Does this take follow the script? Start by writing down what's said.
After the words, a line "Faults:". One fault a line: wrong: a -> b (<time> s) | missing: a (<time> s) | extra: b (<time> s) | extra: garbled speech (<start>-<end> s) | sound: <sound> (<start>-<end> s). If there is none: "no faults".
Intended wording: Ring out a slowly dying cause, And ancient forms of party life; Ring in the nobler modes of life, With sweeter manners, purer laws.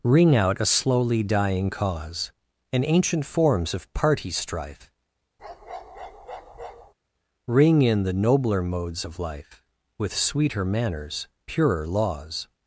Ring out a slowly dying cause, And ancient forms of party strife; Ring in the nobler modes of life, With sweeter manners, purer laws.
Faults:
wrong: life -> strife (4.3 s)
sound: bark (5.4-6.9 s)